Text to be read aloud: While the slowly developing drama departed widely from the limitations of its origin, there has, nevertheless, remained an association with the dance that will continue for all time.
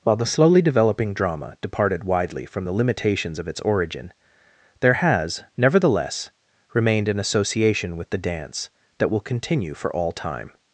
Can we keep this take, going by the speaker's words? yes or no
yes